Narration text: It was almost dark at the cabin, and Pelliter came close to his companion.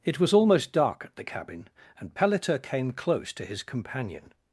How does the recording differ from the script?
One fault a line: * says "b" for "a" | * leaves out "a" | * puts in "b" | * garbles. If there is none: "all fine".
all fine